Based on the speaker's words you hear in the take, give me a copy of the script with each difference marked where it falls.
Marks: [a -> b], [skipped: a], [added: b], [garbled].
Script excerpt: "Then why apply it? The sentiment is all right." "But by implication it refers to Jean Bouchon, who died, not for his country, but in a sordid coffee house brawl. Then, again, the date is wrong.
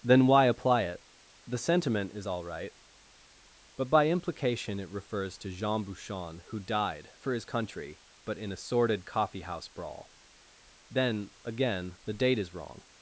"Then why apply it? The sentiment is all right." "But by implication it refers to Jean Bouchon, who died, [skipped: not] for his country, but in a sordid coffee house brawl. Then, again, the date is wrong.